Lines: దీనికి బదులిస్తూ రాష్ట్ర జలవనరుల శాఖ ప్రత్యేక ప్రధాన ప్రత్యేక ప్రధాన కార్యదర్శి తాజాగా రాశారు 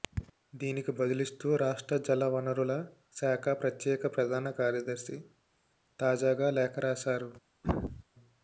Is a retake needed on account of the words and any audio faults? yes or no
yes